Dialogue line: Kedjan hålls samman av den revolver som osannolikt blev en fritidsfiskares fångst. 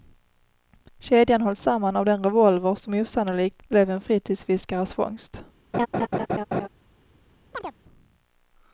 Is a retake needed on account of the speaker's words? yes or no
no